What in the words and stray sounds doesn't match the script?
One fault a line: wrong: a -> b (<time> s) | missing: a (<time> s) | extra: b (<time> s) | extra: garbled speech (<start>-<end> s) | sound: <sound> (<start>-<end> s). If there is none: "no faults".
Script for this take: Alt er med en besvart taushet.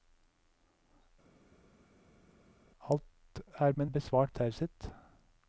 no faults